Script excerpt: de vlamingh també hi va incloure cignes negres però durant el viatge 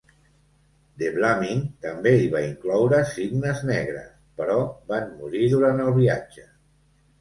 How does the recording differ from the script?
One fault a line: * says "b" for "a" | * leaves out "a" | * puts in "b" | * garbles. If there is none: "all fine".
* puts in "van morir"